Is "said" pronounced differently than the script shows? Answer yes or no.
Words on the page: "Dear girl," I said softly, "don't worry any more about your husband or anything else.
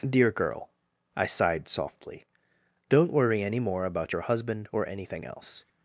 yes